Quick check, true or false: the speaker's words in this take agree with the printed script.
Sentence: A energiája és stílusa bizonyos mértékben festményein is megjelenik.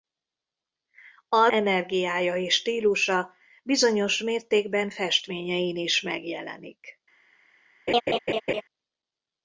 true